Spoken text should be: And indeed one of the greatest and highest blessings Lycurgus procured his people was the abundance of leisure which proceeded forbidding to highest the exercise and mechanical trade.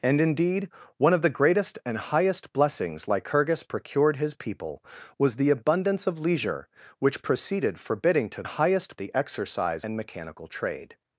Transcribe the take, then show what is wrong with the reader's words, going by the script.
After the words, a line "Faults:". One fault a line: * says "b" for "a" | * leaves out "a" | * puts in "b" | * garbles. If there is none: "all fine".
And indeed one of the greatest and highest blessings Lycurgus procured his people was the abundance of leisure which proceeded forbidding to highest the exercise and mechanical trade.
Faults:
all fine